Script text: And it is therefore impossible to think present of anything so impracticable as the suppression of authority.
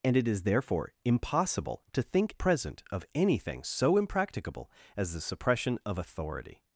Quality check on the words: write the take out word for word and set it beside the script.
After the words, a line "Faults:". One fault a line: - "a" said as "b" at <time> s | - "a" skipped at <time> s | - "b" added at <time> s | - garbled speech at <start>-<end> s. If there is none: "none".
And it is therefore impossible to think present of anything so impracticable as the suppression of authority.
Faults:
none